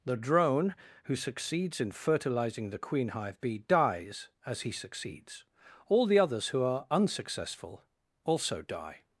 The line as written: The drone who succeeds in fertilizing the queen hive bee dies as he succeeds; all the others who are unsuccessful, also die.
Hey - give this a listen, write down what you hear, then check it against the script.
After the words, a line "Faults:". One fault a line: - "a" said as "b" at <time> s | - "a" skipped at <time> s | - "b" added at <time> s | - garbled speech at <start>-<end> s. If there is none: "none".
The drone who succeeds in fertilizing the queen hive bee dies as he succeeds; all the others who are unsuccessful, also die.
Faults:
none